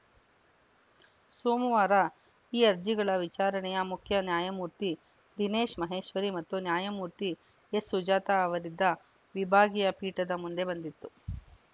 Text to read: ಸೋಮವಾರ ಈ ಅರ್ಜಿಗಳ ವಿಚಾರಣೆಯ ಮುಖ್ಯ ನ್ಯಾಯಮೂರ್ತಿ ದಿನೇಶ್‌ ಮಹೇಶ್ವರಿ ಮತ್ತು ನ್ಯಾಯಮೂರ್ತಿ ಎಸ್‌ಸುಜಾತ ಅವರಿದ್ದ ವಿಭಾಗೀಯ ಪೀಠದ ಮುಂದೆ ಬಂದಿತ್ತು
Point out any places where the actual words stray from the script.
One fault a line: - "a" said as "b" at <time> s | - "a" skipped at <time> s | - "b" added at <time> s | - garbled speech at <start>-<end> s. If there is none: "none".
none